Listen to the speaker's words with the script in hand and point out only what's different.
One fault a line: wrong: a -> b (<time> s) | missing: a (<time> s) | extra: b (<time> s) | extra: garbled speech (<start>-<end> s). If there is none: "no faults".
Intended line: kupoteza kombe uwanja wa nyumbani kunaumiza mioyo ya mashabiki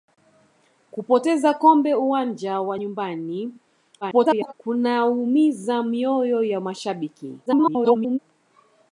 extra: garbled speech (4.0-4.5 s)
extra: garbled speech (7.5-8.2 s)